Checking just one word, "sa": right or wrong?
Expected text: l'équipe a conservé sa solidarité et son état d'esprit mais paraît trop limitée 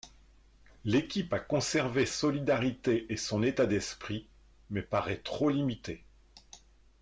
wrong